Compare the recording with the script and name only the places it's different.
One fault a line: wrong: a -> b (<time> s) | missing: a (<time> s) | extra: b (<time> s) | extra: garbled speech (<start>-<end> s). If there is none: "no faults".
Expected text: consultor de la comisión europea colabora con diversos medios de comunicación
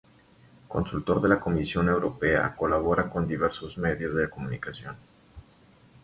no faults